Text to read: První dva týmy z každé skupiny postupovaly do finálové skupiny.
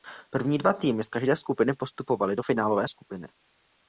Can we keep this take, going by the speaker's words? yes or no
yes